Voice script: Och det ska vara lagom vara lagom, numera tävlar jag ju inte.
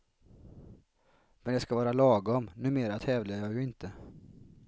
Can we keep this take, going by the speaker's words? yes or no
no